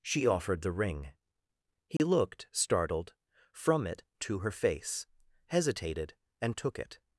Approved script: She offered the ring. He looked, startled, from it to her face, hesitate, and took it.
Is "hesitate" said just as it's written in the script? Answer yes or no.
no